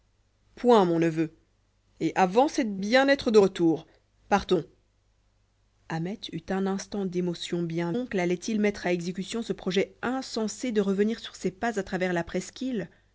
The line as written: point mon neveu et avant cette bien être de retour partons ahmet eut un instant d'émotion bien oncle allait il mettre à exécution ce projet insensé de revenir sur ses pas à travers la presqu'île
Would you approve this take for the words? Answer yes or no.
yes